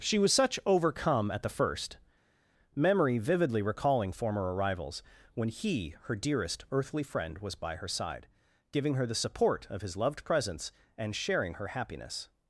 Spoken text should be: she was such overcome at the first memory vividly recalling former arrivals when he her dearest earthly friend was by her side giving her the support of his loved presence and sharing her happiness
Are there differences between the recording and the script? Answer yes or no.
no